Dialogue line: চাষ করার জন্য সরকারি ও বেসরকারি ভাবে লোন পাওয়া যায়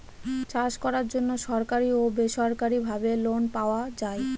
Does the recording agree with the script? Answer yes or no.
yes